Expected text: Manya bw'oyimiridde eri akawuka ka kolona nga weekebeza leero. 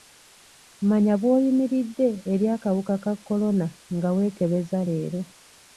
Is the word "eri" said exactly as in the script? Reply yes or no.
yes